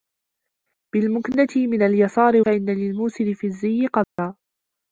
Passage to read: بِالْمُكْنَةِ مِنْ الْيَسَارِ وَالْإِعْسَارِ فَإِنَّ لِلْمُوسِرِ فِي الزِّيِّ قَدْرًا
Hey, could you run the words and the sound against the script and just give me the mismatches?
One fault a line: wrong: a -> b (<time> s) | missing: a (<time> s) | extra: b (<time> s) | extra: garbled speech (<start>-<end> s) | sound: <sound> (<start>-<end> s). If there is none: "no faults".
missing: وَالْإِعْسَارِ (2.4 s)
sound: dropout (4.0-4.2 s)